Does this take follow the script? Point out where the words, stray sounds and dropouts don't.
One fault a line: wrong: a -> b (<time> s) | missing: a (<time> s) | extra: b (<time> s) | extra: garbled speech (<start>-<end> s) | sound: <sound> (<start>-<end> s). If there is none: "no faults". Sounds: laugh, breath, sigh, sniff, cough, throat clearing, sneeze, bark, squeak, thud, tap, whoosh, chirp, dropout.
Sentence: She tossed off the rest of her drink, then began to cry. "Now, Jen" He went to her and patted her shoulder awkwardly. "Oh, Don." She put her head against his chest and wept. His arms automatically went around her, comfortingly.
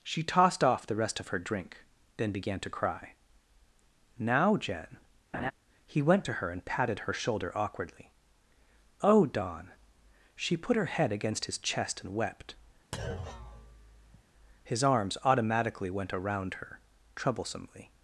sound: laugh (5.3-5.5 s)
sound: thud (12.9-14.2 s)
wrong: comfortingly -> troublesomely (17.2 s)